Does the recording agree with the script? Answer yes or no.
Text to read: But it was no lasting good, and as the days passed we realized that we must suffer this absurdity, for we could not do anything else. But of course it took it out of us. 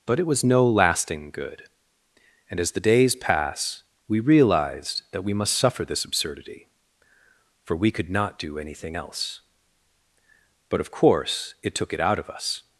no